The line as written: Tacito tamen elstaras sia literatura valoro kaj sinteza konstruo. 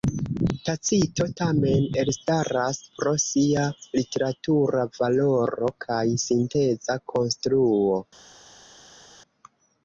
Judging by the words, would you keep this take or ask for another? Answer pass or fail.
fail